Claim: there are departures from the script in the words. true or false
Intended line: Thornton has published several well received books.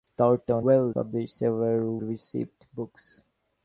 true